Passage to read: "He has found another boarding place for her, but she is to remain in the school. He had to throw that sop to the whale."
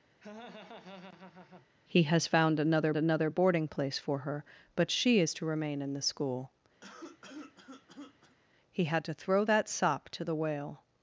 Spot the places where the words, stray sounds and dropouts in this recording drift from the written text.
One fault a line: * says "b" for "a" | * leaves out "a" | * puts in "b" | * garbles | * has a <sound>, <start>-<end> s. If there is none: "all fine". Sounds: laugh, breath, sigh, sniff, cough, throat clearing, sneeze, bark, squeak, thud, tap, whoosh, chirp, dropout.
* has a laugh, 0.2-1.7 s
* puts in "another"
* has a cough, 6.8-8.4 s